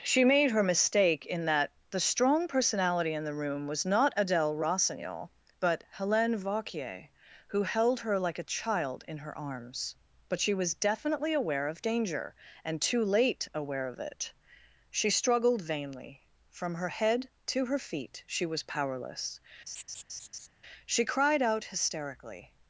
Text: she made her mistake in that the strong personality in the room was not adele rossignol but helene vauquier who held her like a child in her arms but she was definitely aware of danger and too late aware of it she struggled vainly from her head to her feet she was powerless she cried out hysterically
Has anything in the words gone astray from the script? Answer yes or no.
no